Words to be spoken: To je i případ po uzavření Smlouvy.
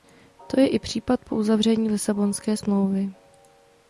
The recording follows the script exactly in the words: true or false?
false